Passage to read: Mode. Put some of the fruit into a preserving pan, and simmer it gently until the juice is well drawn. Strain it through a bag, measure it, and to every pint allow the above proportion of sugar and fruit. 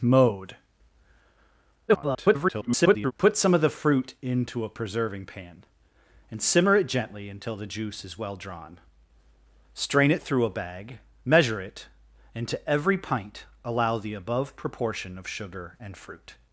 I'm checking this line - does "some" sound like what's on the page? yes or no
yes